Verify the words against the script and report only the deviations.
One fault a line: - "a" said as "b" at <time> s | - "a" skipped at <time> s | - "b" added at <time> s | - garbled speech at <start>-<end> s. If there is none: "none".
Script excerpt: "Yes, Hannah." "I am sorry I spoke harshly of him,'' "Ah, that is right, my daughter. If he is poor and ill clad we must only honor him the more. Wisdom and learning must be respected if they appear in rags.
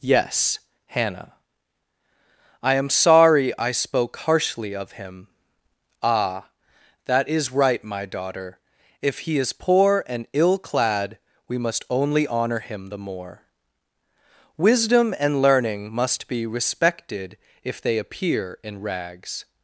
none